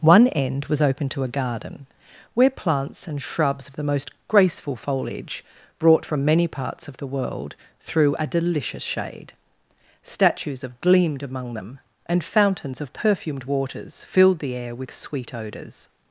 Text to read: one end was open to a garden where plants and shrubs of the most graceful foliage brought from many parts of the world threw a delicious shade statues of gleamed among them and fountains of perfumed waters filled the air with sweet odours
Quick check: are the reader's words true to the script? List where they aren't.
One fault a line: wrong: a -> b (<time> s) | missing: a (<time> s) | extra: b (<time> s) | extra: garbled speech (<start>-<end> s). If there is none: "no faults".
no faults